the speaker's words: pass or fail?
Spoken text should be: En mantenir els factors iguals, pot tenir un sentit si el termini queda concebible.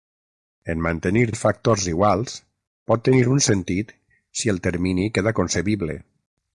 pass